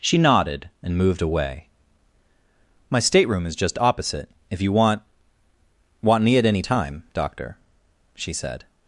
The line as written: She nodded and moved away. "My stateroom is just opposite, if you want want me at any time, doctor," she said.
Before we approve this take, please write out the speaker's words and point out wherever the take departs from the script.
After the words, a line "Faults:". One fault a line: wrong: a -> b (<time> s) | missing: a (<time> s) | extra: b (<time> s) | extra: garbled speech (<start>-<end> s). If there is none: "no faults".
She nodded and moved away. "My stateroom is just opposite, if you want want me at any time, doctor," she said.
Faults:
no faults